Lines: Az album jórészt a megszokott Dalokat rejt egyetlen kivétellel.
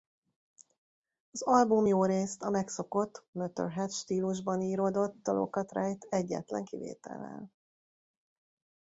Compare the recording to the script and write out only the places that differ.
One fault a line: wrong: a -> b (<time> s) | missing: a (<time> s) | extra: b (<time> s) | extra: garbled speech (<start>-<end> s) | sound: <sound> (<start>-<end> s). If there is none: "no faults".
extra: Motörhead stílusban íródott (3.3 s)